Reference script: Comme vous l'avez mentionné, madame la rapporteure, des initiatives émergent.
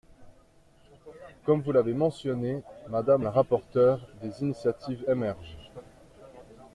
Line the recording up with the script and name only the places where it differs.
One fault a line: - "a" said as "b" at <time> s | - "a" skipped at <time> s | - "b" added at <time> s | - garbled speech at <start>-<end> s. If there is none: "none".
none